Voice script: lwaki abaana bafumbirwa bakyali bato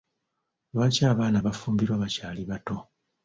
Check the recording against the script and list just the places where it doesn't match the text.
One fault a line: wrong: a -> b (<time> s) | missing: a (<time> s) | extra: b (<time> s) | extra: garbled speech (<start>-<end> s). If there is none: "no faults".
no faults